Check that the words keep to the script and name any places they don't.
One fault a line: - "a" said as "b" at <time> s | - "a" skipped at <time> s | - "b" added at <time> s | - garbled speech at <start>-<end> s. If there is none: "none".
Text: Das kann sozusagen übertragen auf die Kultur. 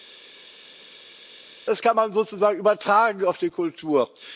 - "man" added at 2.0 s